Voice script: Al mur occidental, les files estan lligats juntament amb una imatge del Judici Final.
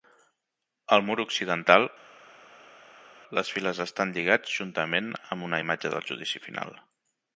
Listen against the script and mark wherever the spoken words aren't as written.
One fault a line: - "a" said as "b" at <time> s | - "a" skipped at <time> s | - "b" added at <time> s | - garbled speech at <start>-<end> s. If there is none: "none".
none